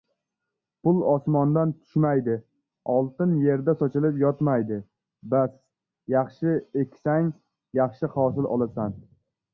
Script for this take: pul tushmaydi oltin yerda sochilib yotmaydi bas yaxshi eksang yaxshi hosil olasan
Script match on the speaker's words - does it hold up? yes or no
no